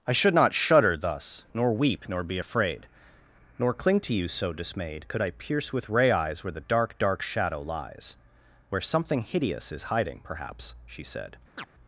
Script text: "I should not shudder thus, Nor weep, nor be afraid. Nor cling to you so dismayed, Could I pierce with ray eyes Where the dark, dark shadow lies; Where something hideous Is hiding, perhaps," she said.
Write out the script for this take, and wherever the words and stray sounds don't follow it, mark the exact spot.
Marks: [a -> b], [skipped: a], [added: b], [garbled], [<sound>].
"I should not shudder thus, Nor weep, nor be afraid. Nor cling to you so dismayed, Could I pierce with ray eyes Where the dark, dark shadow lies; Where something hideous Is hiding, perhaps," she said. [chirp]